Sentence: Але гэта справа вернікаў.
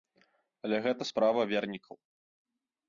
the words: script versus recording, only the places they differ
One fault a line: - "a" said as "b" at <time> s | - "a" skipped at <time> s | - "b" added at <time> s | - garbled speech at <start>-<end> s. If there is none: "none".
none